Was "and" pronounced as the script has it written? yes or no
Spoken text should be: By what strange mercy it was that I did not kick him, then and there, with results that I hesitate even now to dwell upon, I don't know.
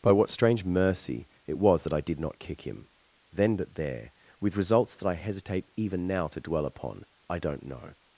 no